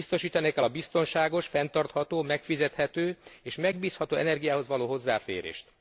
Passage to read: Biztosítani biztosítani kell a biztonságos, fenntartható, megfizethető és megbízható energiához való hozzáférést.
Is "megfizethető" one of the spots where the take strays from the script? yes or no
no